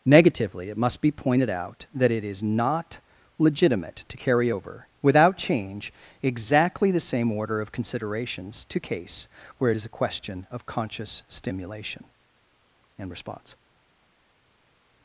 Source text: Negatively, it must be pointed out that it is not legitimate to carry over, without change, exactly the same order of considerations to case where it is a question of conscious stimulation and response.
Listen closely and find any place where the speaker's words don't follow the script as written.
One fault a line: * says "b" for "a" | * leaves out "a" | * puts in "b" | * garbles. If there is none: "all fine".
all fine